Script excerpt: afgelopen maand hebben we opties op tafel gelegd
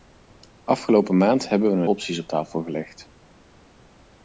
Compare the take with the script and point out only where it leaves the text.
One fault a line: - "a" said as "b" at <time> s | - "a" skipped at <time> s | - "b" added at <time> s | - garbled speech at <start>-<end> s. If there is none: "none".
none